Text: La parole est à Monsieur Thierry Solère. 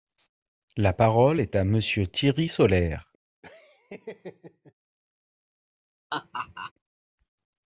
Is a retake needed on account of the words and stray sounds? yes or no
yes